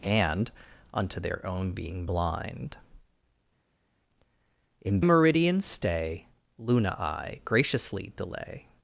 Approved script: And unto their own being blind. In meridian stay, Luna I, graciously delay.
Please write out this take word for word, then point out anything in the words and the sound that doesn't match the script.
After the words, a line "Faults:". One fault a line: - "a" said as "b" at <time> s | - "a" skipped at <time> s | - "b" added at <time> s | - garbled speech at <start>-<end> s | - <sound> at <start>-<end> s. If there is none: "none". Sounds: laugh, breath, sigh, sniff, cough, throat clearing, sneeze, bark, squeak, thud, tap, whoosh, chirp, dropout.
And unto their own being blind. In meridian stay, Luna I, graciously delay.
Faults:
none